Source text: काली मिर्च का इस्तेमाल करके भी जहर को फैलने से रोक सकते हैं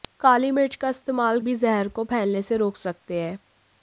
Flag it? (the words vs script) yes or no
yes